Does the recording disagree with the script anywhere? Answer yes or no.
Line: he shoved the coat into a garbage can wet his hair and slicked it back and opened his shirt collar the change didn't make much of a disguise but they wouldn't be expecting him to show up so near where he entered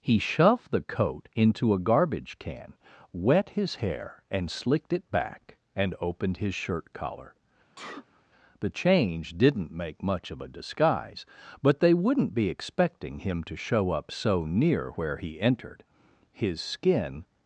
yes